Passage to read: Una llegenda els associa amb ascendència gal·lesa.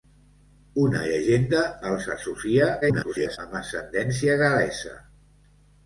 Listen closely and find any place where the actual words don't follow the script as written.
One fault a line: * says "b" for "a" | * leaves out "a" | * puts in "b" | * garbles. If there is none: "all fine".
* garbles